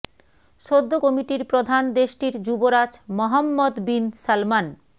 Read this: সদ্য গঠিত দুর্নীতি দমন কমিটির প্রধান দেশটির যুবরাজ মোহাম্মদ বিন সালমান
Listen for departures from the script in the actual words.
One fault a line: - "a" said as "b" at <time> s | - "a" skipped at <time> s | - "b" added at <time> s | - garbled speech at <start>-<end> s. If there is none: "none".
- "গঠিত দুর্নীতি দমন" skipped at 0.9 s